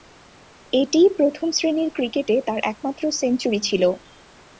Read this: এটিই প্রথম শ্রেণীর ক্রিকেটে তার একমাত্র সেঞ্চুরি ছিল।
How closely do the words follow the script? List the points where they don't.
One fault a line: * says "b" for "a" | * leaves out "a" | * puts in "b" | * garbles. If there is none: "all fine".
all fine